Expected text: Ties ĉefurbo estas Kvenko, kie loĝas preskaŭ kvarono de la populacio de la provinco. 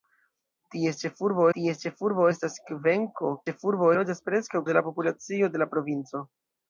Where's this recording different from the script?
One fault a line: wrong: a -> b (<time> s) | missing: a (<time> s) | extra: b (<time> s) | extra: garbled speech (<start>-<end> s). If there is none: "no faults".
extra: ties ĉefurbo (1.6 s)
wrong: kie -> ĉefurbo (3.4 s)
missing: kvarono (4.6 s)